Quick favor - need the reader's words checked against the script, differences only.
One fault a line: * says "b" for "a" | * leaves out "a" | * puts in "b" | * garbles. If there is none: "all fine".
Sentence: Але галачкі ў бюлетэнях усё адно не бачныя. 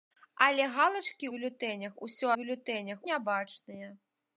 * leaves out "ў"
* says "бюлетэнях" for "адно"